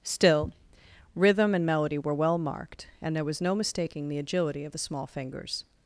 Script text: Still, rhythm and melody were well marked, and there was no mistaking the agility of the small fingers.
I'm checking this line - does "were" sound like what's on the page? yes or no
yes